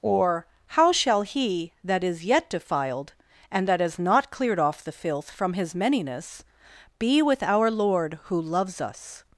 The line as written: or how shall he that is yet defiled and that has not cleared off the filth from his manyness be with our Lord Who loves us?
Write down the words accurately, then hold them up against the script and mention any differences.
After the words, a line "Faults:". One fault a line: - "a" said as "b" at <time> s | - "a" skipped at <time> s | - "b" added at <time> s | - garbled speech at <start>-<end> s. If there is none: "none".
or how shall he that is yet defiled and that has not cleared off the filth from his manyness be with our Lord Who loves us?
Faults:
none